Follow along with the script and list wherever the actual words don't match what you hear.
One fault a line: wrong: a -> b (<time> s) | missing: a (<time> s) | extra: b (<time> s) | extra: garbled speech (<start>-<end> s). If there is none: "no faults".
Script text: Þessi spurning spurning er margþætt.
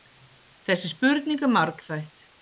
missing: spurning (1.4 s)